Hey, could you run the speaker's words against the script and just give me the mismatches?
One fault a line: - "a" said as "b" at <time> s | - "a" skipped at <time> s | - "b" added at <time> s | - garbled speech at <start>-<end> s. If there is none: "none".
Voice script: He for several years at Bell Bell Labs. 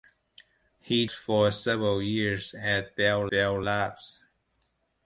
none